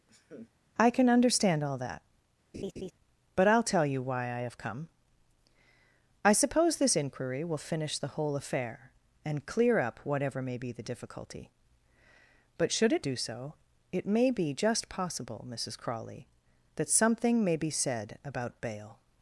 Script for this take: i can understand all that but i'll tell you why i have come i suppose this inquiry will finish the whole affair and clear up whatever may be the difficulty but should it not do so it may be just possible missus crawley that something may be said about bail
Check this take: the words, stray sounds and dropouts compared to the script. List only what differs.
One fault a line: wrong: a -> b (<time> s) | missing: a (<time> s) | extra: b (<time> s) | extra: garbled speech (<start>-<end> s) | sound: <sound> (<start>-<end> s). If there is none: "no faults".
sound: laugh (0.1-0.5 s)
sound: laugh (2.5-2.9 s)
missing: not (13.0 s)